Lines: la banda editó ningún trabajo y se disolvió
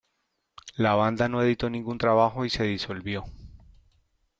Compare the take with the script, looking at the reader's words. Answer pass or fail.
fail